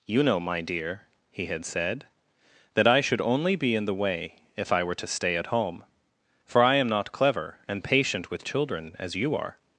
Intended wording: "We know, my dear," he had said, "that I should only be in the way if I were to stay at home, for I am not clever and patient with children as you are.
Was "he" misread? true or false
false